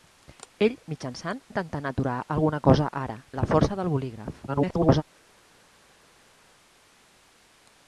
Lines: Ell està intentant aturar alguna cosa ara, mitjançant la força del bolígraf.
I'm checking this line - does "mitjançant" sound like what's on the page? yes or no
no